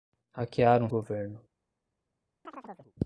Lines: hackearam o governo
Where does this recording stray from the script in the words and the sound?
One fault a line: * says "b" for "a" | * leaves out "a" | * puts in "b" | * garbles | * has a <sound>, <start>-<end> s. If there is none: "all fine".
* has a chirp, 2.4-2.9 s